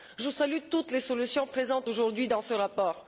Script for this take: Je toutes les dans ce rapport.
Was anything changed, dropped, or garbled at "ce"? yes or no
no